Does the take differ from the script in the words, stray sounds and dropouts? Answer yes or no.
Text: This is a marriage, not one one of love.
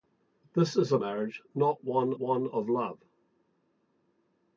no